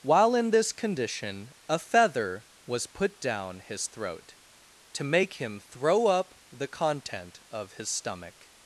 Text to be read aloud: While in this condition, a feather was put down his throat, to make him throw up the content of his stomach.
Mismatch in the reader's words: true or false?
false